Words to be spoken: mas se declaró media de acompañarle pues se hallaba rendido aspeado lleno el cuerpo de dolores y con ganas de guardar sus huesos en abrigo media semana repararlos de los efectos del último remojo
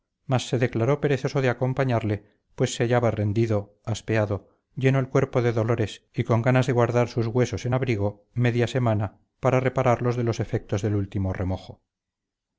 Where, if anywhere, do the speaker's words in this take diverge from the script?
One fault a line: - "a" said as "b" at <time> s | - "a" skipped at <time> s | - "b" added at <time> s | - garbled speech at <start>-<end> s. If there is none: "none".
- "media" said as "perezoso" at 1.0 s
- "para" added at 9.4 s